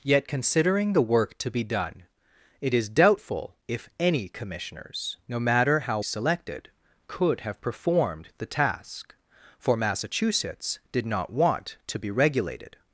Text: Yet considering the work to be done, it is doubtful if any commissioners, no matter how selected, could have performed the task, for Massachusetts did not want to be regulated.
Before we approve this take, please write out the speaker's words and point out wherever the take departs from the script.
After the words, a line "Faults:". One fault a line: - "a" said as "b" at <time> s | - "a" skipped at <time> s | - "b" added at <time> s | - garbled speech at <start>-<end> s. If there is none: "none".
Yet considering the work to be done, it is doubtful if any commissioners, no matter how selected, could have performed the task, for Massachusetts did not want to be regulated.
Faults:
none